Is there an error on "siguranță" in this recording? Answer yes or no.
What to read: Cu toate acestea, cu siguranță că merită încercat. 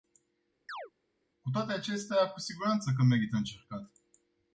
no